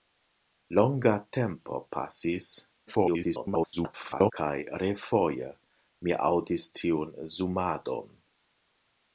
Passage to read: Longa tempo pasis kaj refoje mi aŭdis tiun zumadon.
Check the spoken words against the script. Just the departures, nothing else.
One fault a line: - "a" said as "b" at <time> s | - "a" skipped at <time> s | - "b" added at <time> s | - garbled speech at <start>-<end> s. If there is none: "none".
- garbled speech at 2.9-4.3 s